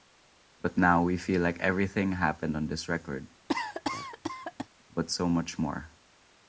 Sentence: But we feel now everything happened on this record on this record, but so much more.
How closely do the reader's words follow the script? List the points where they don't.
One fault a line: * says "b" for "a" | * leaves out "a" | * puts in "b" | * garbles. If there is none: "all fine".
* puts in "now"
* says "like" for "now"
* leaves out "on this record"